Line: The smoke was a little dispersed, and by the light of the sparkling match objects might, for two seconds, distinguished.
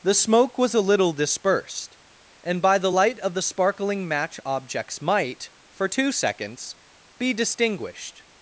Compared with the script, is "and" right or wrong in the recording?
right